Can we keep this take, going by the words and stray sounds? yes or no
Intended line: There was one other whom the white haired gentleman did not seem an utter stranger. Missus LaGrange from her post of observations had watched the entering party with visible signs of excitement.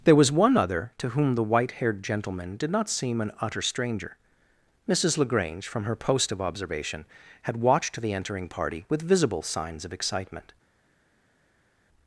no